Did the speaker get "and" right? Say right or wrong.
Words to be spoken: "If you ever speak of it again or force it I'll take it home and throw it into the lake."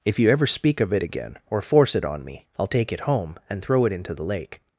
right